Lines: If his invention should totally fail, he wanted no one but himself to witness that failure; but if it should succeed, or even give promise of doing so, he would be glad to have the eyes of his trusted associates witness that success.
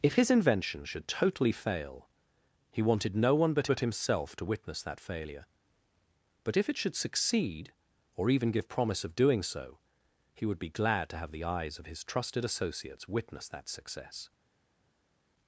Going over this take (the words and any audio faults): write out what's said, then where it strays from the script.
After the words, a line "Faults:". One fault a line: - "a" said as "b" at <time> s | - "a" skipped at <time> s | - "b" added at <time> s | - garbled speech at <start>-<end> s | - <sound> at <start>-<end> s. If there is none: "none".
If his invention should totally fail, he wanted no one but but himself to witness that failure; but if it should succeed, or even give promise of doing so, he would be glad to have the eyes of his trusted associates witness that success.
Faults:
- "but" added at 3.7 s